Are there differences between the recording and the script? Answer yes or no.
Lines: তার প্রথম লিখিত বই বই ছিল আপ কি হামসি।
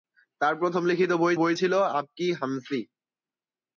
no